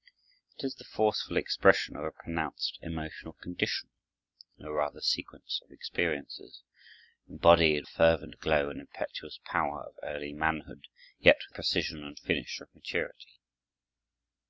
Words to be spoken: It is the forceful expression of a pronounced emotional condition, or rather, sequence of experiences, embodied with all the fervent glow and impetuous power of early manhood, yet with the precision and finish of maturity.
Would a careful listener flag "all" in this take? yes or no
yes